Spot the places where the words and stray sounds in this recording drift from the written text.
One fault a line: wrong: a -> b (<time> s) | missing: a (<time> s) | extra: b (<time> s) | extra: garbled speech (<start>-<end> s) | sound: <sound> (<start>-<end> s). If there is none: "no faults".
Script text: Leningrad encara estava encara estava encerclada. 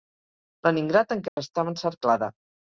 sound: dropout (1.3-1.4 s)
missing: encara estava (1.8 s)